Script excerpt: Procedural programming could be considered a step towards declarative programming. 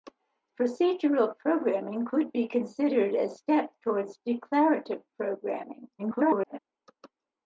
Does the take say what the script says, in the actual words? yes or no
no